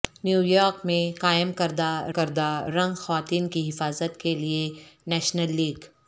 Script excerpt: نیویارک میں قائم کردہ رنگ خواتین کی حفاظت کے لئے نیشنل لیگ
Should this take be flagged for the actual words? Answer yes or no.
yes